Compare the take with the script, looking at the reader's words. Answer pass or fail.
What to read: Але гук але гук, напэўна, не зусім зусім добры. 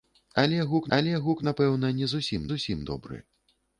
pass